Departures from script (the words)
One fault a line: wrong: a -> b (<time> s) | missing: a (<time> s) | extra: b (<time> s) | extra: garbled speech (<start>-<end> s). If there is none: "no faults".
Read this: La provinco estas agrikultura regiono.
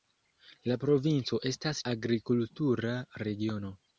no faults